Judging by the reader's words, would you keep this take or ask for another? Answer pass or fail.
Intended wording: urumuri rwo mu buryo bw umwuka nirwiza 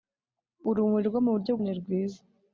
fail